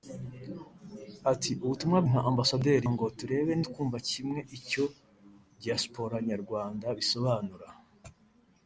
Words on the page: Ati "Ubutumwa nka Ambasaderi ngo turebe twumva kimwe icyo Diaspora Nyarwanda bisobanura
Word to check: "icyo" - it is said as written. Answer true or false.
true